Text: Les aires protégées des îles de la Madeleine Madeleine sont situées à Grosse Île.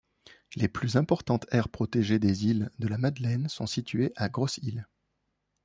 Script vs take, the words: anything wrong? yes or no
yes